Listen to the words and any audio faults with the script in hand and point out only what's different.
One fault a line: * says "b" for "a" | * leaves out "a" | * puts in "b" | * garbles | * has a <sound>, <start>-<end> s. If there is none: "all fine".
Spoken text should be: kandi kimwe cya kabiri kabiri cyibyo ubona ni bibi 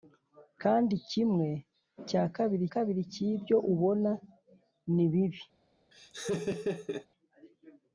* has a laugh, 5.9-7.1 s